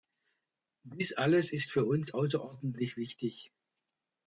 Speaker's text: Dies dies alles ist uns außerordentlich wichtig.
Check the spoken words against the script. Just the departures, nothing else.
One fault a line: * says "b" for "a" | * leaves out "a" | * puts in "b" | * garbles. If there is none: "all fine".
* leaves out "dies"
* puts in "für"